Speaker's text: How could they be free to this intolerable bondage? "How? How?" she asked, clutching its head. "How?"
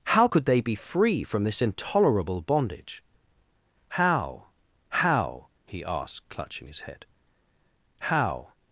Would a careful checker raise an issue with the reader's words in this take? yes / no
yes